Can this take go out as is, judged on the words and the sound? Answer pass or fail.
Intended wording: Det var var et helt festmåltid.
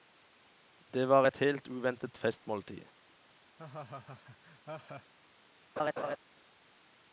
fail